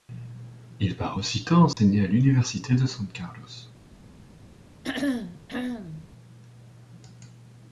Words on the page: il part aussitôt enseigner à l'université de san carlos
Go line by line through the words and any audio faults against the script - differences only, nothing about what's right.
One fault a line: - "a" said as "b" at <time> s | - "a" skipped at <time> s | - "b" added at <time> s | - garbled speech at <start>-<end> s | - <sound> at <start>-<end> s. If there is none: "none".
- dropout at 1.7-1.8 s
- throat clearing at 4.8-6.1 s